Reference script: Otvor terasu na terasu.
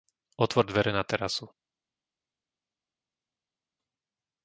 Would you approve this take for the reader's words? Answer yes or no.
no